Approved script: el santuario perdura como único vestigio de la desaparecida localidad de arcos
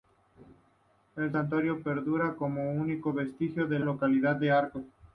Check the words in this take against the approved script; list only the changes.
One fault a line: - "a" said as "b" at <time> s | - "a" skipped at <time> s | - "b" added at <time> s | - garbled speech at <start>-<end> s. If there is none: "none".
- "la desaparecida" skipped at 3.8 s